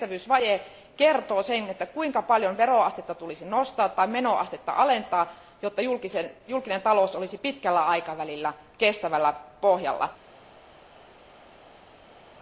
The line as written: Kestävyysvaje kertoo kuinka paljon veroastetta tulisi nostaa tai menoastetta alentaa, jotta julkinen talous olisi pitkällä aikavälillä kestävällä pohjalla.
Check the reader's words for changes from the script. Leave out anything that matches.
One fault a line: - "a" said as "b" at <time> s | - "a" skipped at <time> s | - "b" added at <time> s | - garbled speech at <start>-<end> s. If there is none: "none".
- "sen" added at 1.4 s